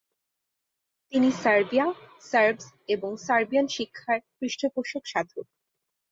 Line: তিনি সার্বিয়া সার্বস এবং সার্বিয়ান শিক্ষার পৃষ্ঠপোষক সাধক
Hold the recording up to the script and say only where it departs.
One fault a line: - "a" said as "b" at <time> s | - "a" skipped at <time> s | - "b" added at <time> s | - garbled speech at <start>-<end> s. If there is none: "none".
none